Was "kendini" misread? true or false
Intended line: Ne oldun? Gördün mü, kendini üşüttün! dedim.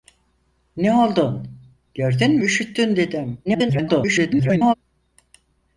true